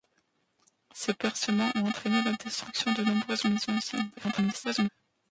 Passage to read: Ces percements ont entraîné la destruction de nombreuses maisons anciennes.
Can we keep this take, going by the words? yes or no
no